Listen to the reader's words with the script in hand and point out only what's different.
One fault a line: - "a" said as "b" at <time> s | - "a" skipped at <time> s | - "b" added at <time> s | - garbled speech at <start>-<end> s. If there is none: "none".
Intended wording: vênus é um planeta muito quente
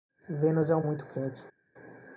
- "planeta" skipped at 0.8 s